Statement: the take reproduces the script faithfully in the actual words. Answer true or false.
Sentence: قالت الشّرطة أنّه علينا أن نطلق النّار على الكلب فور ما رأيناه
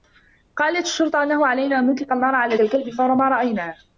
true